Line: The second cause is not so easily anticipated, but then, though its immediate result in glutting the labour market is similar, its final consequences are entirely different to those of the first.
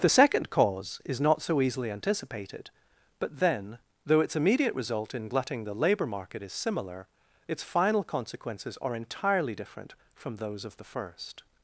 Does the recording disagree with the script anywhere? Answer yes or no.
yes